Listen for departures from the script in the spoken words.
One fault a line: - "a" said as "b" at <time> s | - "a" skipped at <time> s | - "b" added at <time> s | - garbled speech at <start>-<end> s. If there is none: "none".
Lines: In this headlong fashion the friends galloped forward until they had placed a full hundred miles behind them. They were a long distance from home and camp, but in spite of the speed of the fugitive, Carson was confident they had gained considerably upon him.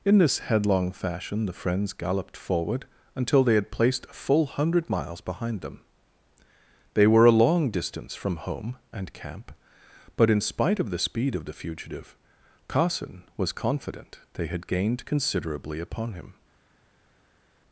none